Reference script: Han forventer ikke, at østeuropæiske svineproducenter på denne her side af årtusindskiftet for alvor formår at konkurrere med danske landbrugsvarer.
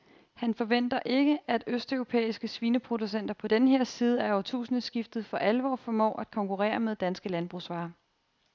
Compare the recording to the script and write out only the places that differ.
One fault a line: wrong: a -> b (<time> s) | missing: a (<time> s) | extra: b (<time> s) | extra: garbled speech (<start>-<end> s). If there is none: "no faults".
no faults